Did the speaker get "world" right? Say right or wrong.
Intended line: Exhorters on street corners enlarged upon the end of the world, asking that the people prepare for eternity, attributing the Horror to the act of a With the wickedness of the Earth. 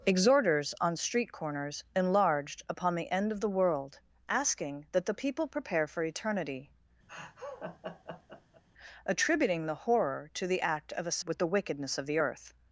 right